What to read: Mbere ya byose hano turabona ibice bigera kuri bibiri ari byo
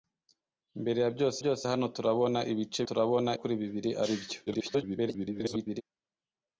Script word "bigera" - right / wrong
wrong